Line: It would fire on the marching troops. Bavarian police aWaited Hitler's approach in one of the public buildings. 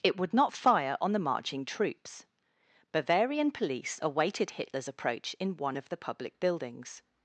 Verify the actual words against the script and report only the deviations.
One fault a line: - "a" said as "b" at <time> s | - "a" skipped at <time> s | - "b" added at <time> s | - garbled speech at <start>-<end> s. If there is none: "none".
- "not" added at 0.3 s